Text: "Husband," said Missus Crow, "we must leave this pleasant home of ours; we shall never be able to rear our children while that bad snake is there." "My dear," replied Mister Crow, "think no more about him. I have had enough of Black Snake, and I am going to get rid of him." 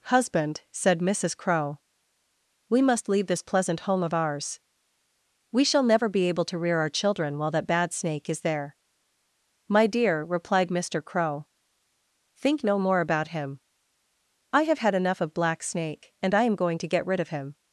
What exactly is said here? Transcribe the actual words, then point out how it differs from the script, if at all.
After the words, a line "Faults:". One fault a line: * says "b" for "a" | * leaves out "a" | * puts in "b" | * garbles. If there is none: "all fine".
"Husband," said Missus Crow, "we must leave this pleasant home of ours; we shall never be able to rear our children while that bad snake is there." "My dear," replied Mister Crow, "think no more about him. I have had enough of Black Snake, and I am going to get rid of him."
Faults:
all fine